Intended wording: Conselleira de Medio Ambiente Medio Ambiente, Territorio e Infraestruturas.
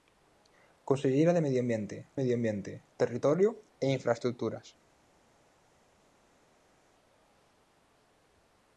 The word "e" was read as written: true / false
true